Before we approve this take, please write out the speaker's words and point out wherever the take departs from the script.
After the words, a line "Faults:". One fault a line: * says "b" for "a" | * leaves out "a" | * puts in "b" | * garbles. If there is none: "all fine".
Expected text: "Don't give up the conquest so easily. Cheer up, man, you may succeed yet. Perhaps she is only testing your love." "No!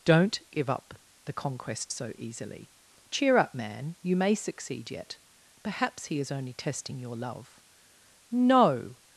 "Don't give up the conquest so easily. Cheer up, man, you may succeed yet. Perhaps he is only testing your love." "No!
Faults:
* says "he" for "she"